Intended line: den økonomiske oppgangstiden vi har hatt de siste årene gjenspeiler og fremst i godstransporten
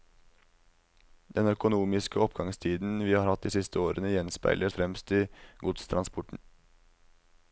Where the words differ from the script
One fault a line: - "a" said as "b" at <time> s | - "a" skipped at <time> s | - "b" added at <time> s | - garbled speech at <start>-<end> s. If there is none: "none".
none